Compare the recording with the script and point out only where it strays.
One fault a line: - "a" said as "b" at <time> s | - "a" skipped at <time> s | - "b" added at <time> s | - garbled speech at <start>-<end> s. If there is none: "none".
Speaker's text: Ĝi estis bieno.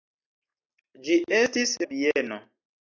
none